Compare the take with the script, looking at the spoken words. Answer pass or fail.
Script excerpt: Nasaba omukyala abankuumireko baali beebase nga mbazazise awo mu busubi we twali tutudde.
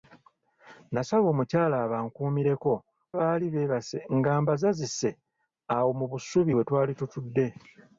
pass